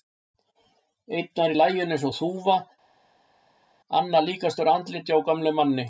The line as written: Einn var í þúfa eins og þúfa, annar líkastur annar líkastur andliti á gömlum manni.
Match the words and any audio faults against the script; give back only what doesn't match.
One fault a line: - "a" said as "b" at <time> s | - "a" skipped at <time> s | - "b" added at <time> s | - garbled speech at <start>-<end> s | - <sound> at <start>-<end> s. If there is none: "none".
- "þúfa" said as "laginu" at 1.6 s
- "annar líkastur" skipped at 4.7 s